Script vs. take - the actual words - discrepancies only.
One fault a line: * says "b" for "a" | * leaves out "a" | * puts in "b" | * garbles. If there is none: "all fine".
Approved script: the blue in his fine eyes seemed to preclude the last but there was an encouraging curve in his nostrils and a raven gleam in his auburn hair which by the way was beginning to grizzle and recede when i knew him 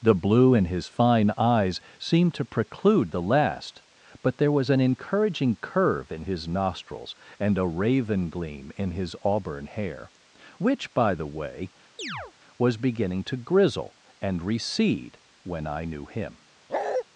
all fine